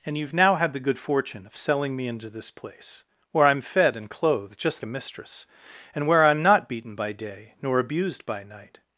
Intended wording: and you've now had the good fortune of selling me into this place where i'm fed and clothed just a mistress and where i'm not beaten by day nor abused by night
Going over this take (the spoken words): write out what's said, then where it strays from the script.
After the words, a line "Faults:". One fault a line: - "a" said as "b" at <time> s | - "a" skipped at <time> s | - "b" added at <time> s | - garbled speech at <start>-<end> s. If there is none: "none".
and you've now had the good fortune of selling me into this place where i'm fed and clothed just a mistress and where i'm not beaten by day nor abused by night
Faults:
none